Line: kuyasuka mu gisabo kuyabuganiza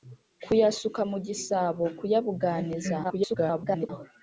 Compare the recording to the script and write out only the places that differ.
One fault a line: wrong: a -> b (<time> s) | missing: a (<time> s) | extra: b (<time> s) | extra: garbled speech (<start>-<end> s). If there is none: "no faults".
extra: garbled speech (3.0-3.9 s)